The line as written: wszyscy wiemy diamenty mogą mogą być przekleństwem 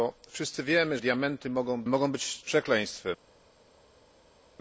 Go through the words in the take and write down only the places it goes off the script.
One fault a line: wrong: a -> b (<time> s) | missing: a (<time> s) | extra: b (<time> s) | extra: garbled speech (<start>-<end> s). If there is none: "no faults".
no faults